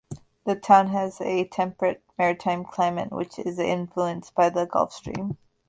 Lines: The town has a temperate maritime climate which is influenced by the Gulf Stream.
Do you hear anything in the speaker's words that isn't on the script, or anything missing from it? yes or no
no